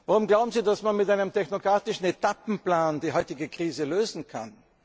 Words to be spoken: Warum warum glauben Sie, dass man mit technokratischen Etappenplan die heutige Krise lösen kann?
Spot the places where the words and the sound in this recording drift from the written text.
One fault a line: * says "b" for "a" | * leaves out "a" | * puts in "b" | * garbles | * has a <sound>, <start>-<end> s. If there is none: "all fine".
* leaves out "warum"
* puts in "einem"